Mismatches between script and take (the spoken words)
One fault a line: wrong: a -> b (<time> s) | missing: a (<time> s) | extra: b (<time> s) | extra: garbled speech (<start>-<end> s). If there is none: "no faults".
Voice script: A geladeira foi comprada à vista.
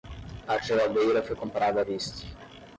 no faults